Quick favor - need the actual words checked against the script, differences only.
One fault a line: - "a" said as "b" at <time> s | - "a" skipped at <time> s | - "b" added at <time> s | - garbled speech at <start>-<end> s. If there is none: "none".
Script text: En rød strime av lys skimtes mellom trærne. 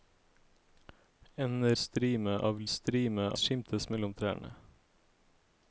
- "rød" skipped at 1.8 s
- "lys" said as "strime" at 2.7 s